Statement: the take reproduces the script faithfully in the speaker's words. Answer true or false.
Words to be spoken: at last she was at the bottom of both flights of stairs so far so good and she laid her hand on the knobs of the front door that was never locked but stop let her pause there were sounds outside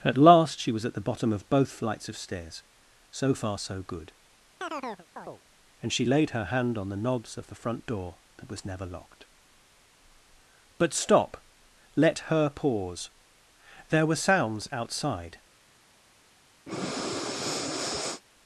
true